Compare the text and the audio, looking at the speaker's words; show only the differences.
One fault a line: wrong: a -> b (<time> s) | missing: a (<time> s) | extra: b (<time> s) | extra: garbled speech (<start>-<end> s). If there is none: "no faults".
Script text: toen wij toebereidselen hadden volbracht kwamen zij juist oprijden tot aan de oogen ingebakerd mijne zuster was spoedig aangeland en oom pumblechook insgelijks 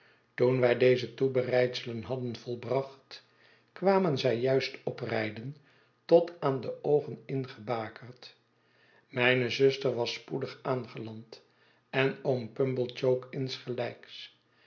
extra: deze (0.8 s)